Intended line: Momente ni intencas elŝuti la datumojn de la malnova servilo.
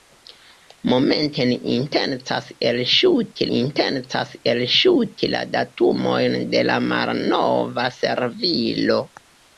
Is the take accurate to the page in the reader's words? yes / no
no